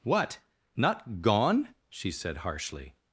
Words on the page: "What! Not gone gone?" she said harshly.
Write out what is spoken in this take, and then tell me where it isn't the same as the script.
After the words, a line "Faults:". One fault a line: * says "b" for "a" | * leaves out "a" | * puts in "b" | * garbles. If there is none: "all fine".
"What! Not gone?" she said harshly.
Faults:
* leaves out "gone"